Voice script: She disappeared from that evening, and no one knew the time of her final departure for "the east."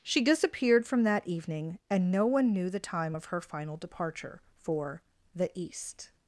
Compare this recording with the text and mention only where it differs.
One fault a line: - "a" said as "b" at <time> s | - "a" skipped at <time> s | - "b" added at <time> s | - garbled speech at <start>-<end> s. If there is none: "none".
none